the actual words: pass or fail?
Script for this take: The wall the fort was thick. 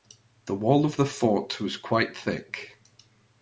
fail